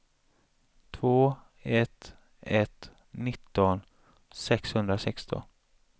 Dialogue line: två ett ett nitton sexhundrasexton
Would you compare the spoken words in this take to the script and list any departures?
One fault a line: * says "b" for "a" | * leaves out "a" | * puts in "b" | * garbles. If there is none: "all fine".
all fine